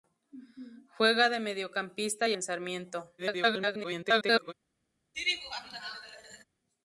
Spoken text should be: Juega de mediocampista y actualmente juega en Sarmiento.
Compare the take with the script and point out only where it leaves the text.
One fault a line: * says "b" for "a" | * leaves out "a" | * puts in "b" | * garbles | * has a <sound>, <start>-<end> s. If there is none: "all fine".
* leaves out "actualmente juega"
* garbles
* has a laugh, 5.1-6.4 s